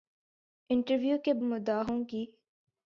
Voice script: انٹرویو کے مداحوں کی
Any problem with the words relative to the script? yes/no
no